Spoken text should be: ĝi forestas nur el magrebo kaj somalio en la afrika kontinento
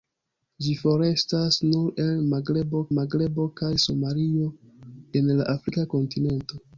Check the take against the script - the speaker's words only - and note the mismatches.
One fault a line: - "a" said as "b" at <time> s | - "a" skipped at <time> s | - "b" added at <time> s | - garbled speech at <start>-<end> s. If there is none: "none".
- "magrebo" added at 3.0 s